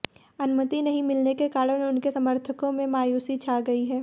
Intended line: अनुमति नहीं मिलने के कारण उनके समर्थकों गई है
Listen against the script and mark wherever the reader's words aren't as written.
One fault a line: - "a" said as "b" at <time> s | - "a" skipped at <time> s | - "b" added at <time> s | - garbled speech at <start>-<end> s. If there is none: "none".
- "में मायूसी छा" added at 2.7 s